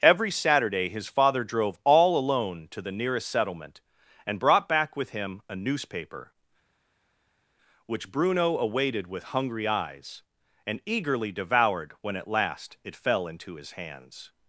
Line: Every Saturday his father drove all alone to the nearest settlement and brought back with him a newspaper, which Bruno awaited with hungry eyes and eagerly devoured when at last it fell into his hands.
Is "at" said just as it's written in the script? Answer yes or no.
yes